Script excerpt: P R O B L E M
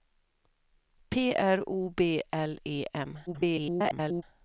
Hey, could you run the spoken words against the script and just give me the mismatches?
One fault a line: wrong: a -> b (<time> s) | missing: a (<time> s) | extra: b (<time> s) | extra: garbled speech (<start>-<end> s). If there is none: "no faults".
extra: garbled speech (3.3-4.2 s)